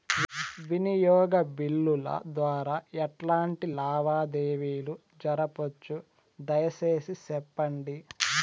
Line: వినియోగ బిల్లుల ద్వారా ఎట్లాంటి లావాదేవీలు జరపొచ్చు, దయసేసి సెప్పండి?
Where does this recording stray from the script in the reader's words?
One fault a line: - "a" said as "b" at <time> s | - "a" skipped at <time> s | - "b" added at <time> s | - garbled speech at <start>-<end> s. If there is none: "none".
none